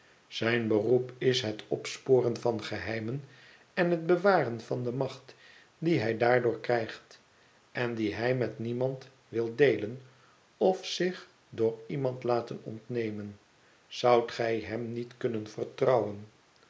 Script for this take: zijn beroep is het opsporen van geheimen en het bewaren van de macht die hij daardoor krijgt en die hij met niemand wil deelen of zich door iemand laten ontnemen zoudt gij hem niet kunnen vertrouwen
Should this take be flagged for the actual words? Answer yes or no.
no